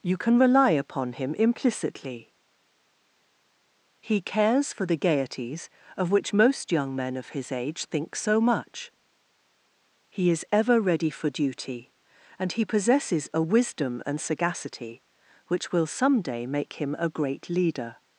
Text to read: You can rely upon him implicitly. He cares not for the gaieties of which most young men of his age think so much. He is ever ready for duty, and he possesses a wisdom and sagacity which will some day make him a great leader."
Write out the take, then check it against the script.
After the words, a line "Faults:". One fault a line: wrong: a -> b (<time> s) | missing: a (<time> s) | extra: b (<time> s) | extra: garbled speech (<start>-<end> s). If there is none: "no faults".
You can rely upon him implicitly. He cares for the gaieties of which most young men of his age think so much. He is ever ready for duty, and he possesses a wisdom and sagacity which will some day make him a great leader."
Faults:
missing: not (4.7 s)